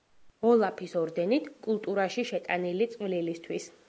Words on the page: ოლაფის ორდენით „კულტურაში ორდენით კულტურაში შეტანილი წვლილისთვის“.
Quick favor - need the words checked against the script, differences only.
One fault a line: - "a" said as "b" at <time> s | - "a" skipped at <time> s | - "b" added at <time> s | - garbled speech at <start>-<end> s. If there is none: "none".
- "ორდენით კულტურაში" skipped at 2.3 s